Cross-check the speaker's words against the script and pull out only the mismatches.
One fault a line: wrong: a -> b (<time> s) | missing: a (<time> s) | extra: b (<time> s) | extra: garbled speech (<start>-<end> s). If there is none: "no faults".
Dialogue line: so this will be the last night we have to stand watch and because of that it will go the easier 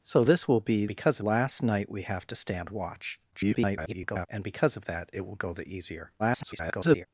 wrong: the -> because (0.9 s)
extra: garbled speech (3.3-4.3 s)
extra: garbled speech (6.2-7.1 s)